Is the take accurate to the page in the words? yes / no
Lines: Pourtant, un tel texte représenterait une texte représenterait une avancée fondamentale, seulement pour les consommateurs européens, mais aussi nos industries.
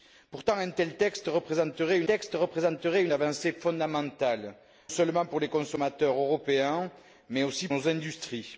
yes